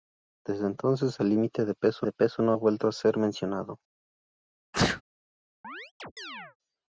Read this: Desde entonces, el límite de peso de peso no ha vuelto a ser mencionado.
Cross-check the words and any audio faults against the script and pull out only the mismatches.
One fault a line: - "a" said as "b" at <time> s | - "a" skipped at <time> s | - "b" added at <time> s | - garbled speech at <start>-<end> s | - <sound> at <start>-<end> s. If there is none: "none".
- sneeze at 4.7-5.0 s
- chirp at 5.6-6.6 s